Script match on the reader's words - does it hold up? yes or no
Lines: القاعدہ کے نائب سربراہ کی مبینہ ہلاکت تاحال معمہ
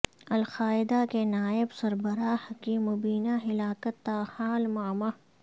yes